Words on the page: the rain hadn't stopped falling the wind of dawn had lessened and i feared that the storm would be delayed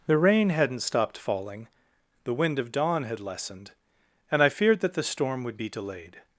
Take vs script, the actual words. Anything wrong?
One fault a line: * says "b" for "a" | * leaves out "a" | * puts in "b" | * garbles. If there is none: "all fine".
all fine